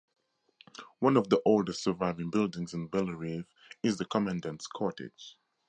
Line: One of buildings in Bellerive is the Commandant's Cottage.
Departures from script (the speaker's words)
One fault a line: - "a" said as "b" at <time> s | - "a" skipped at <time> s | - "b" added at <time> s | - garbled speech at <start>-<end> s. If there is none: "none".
- "the oldest surviving" added at 1.3 s